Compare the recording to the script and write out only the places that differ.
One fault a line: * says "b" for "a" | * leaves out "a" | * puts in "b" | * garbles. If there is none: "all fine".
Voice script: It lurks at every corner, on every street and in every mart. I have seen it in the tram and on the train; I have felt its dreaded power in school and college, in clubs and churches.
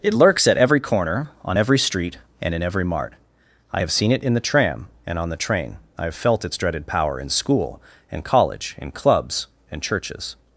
all fine